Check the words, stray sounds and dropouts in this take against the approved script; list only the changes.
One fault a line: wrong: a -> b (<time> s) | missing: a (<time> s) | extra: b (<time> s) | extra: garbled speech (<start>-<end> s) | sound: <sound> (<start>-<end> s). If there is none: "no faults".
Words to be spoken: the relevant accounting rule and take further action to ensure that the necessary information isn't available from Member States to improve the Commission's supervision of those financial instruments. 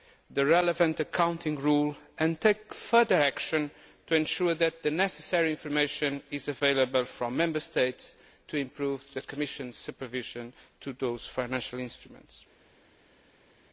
wrong: isn't -> is (6.3 s)